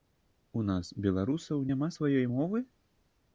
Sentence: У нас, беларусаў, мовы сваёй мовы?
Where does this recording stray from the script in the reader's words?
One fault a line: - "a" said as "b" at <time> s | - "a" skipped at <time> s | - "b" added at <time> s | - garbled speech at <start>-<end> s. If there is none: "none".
- "мовы" said as "няма" at 1.7 s